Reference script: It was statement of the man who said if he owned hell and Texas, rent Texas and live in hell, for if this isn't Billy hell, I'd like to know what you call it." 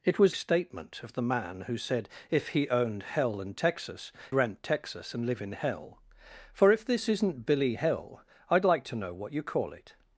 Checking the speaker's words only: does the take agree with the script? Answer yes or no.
yes